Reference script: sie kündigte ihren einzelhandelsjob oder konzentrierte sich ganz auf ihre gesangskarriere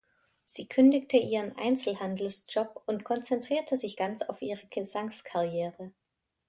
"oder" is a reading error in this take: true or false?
true